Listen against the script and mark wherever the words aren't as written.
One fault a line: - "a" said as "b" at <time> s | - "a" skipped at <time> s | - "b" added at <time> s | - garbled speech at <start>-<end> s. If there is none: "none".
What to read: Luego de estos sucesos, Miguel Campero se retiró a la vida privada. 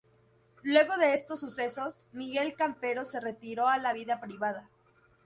none